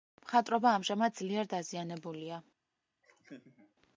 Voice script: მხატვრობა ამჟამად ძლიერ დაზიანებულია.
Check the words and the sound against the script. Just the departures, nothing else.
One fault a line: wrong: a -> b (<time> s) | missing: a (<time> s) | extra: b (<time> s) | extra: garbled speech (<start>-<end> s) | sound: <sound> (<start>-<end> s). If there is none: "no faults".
sound: laugh (3.0-3.7 s)